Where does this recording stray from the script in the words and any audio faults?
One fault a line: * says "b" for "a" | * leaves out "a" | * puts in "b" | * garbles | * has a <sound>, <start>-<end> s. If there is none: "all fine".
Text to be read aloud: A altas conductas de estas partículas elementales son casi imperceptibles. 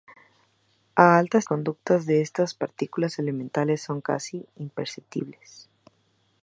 all fine